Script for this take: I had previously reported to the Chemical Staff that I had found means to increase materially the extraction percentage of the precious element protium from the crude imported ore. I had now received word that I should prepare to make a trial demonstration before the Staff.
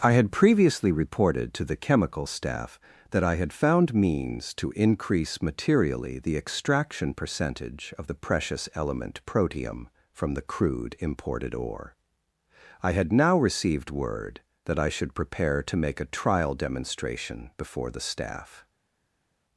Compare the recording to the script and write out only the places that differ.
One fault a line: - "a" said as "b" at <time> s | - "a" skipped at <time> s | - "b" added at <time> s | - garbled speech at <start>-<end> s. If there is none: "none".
none